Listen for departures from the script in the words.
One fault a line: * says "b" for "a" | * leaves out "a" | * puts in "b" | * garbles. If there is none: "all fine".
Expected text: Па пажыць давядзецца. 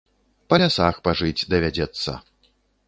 * puts in "лясах"